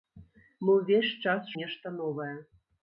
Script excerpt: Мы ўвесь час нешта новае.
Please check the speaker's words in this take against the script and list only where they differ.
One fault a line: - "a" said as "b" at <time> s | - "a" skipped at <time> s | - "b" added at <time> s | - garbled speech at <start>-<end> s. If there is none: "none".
none